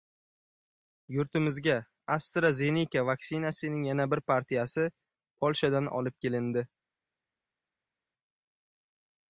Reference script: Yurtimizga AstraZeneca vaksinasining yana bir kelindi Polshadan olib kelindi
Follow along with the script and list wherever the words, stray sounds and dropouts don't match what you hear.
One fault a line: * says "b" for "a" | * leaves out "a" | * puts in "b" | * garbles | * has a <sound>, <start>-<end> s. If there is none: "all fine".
* says "partiyasi" for "kelindi"